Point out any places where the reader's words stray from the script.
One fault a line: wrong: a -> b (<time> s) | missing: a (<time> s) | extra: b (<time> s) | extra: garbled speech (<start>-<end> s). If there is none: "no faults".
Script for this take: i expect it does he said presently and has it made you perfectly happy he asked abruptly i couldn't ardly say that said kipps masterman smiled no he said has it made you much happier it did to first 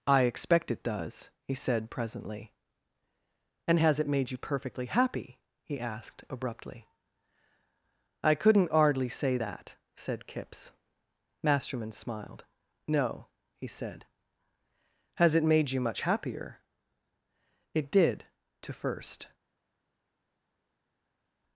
no faults